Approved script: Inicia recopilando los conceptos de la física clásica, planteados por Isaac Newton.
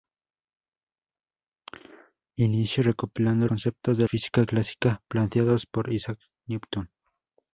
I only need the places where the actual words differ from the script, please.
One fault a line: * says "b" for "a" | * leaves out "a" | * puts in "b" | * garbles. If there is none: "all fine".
* leaves out "los"
* leaves out "la"